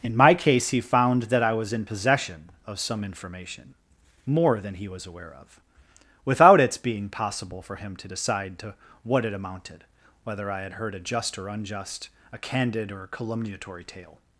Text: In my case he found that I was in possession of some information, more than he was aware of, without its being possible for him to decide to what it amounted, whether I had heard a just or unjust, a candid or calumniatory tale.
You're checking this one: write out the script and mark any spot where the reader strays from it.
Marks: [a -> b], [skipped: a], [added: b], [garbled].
In my case he found that I was in possession of some information, more than he was aware of, without its being possible for him to decide to what it amounted, whether I had heard a just or unjust, a candid or calumniatory tale.